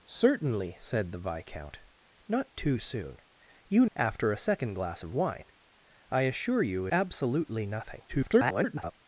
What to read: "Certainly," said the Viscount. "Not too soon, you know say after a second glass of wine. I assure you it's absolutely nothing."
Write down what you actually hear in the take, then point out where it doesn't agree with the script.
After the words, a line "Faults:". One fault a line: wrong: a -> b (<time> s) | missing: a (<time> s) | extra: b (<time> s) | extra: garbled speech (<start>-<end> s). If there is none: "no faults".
"Certainly," said the Viscount. "Not too soon, you after a second glass of wine. I assure you absolutely nothing." [garbled]
Faults:
missing: know say (3.9 s)
missing: it's (6.9 s)
extra: garbled speech (8.1-8.9 s)